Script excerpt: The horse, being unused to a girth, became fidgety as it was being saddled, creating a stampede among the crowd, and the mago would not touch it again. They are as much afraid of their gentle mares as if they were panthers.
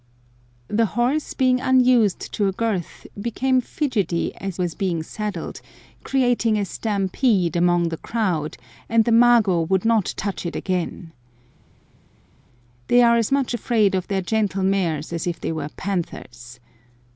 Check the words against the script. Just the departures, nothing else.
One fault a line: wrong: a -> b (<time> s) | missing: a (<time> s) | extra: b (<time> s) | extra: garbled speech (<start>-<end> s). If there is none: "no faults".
missing: it (4.6 s)